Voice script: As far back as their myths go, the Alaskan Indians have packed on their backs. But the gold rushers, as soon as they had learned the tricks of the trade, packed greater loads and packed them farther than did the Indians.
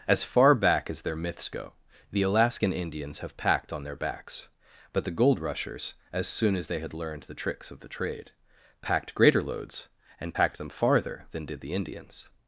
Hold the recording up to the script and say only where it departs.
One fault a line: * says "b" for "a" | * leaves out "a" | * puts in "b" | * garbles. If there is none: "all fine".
all fine